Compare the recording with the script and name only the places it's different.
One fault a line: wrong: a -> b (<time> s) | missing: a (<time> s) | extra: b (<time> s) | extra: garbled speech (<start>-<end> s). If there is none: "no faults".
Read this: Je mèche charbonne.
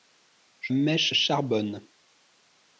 no faults